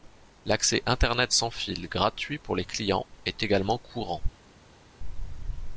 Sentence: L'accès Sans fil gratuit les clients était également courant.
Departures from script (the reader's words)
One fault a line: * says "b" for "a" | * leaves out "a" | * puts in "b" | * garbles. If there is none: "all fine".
* puts in "Internet"
* puts in "pour"
* says "est" for "était"